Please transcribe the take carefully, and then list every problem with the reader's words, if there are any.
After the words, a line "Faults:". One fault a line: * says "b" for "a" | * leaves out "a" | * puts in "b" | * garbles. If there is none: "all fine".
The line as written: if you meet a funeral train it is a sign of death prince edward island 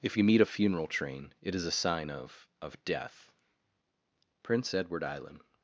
if you meet a funeral train it is a sign of of death prince edward island
Faults:
* puts in "of"